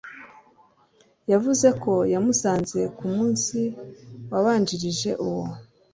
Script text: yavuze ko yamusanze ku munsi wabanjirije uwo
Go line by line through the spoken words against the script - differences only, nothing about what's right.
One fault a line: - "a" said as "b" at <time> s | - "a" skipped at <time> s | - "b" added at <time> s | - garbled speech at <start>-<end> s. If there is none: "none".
none